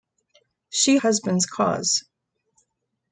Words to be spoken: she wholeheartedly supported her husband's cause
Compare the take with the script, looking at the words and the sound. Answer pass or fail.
fail